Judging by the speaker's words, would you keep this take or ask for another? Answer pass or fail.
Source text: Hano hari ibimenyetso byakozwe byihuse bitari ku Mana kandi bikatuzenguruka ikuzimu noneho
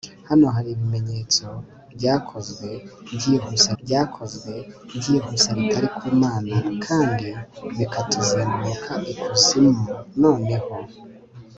fail